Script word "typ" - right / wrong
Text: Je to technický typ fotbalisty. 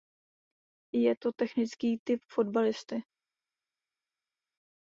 right